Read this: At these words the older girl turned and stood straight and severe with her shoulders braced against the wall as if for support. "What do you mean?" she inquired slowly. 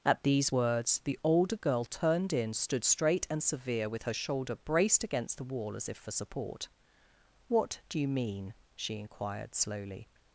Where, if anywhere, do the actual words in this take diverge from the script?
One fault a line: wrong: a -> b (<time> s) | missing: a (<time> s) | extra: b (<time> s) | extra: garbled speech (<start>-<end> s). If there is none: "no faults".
wrong: and -> in (2.3 s)
wrong: shoulders -> shoulder (4.1 s)